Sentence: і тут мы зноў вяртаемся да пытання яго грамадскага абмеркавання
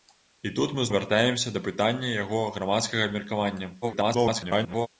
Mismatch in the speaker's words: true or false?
true